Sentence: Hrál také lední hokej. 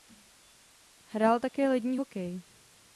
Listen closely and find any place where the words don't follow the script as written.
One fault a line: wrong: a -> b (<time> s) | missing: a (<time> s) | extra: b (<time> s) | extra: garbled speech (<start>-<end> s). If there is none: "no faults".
no faults